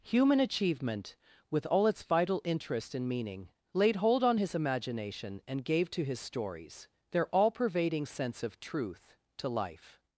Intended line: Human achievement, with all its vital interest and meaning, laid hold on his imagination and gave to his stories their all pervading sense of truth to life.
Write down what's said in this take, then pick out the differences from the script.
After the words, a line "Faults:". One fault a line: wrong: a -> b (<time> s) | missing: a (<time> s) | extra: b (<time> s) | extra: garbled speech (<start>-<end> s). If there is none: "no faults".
Human achievement, with all its vital interest and meaning, laid hold on his imagination and gave to his stories their all pervading sense of truth to life.
Faults:
no faults